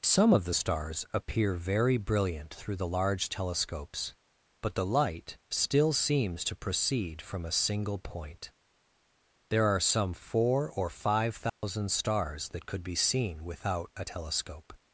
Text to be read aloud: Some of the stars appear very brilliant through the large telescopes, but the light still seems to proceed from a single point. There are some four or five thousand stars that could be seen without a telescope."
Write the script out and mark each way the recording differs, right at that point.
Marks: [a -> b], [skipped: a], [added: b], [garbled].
Some of the stars appear very brilliant through the large telescopes, but the light still seems to proceed from a single point. There are some four or five thousand stars that could be seen without a telescope."